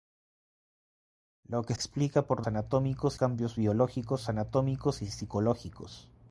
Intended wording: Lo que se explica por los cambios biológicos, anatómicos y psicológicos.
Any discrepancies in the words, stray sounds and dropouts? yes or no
yes